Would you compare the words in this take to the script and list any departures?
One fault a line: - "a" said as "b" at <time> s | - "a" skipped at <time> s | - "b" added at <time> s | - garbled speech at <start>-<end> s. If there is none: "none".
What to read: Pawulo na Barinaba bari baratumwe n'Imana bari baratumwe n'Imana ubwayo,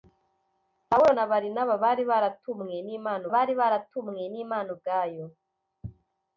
none